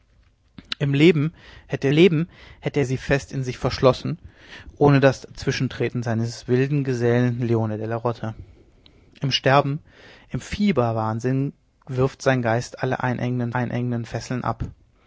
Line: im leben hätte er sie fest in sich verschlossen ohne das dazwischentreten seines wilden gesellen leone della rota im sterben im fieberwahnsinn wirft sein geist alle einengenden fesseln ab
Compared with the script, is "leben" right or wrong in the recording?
right